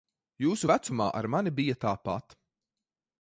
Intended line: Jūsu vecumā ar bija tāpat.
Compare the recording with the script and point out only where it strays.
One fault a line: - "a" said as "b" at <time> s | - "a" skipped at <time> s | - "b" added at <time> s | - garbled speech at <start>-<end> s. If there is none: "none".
- "mani" added at 1.3 s